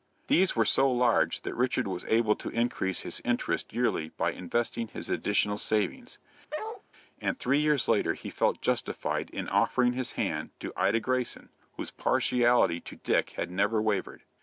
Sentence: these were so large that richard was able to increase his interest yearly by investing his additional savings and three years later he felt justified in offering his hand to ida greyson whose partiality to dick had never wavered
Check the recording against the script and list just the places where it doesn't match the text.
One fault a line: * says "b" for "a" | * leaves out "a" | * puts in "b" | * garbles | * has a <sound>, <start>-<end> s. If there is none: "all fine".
* has a bark, 6.5-6.8 s